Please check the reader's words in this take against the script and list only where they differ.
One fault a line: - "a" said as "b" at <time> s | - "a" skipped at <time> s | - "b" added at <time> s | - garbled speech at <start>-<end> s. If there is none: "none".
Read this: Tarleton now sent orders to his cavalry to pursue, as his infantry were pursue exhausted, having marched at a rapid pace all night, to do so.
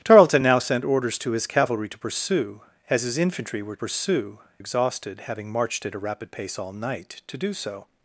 none